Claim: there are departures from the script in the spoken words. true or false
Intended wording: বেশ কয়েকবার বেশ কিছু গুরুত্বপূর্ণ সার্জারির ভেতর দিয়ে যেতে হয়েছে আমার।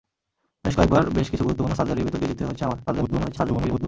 true